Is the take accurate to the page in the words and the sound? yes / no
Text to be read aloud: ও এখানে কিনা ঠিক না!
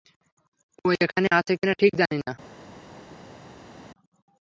no